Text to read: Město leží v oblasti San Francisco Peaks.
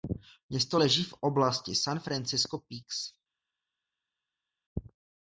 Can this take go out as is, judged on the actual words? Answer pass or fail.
pass